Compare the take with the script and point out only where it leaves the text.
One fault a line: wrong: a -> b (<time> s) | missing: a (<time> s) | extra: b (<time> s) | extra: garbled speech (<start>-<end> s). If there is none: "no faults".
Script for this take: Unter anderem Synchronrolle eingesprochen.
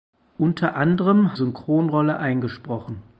no faults